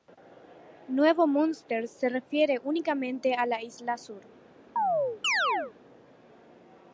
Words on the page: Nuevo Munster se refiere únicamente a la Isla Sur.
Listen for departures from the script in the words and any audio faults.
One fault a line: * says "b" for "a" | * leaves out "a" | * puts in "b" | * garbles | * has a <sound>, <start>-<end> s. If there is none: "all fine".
* has a chirp, 4.8-5.7 s